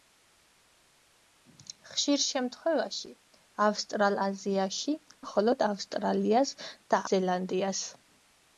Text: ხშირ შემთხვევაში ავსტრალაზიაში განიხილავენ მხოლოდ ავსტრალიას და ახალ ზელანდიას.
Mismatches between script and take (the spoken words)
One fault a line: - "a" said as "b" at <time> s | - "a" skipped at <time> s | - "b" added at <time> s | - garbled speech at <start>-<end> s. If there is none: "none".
- "განიხილავენ" skipped at 5.0 s
- "ახალ" skipped at 7.0 s